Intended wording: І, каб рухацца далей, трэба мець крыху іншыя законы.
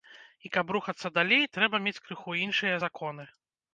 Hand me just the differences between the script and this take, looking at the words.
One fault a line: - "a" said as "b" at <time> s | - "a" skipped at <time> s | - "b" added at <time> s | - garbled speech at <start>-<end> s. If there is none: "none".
none